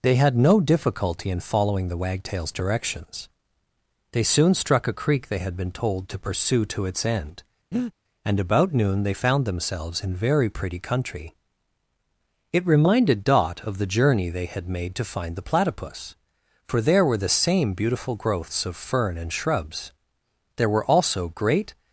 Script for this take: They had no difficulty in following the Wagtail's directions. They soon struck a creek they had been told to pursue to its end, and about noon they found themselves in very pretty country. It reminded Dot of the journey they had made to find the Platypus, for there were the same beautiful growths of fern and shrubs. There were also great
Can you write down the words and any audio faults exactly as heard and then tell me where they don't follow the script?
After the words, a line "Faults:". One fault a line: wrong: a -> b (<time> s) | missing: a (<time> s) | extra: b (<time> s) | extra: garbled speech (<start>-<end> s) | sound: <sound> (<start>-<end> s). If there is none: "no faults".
They had no difficulty in following the Wagtail's directions. They soon struck a creek they had been told to pursue to its end, and about noon they found themselves in very pretty country. It reminded Dot of the journey they had made to find the Platypus, for there were the same beautiful growths of fern and shrubs. There were also great
Faults:
sound: breath (7.7-7.9 s)